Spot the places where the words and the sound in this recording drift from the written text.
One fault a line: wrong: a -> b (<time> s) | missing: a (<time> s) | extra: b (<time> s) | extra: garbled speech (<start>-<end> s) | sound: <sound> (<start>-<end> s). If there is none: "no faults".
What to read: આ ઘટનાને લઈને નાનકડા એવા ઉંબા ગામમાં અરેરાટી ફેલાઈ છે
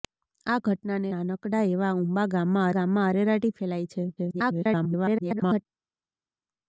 missing: લઈને (1.1 s)
extra: ગામમાં (2.7 s)
extra: garbled speech (4.2-5.7 s)